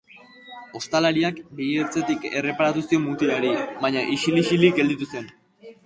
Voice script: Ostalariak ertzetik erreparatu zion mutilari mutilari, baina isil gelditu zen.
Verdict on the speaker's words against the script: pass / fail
fail